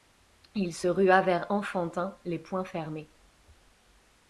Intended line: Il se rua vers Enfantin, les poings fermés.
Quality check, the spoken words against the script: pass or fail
pass